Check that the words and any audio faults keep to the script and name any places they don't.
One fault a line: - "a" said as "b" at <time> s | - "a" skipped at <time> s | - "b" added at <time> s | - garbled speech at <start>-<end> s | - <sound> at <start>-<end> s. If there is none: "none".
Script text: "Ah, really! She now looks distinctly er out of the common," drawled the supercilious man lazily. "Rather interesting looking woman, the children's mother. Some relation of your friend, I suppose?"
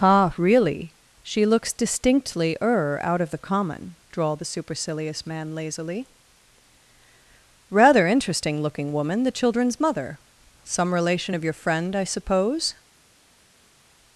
- "now" skipped at 1.4 s